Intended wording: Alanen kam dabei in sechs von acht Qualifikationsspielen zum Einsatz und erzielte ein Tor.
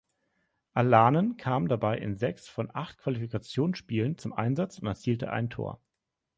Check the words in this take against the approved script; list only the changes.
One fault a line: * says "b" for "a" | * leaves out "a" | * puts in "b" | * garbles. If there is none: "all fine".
all fine